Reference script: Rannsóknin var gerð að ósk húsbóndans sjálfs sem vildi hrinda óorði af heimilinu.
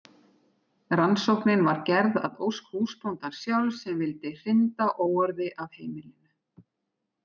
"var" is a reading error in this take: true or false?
false